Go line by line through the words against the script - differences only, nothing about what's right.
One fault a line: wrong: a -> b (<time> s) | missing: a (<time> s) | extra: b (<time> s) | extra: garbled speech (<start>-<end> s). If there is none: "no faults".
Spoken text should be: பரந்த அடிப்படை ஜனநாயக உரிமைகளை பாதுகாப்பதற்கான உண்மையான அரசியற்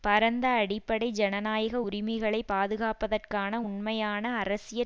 no faults